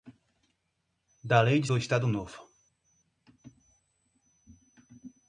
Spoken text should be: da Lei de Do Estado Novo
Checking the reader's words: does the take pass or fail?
pass